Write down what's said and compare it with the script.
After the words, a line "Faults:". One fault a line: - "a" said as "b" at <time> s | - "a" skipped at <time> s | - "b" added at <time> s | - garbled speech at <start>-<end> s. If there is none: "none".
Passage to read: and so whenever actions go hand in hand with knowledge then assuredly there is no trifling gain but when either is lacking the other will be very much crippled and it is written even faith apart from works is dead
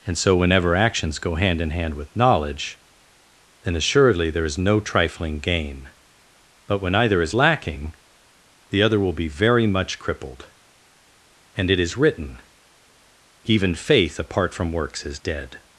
and so whenever actions go hand in hand with knowledge then assuredly there is no trifling gain but when either is lacking the other will be very much crippled and it is written even faith apart from works is dead
Faults:
none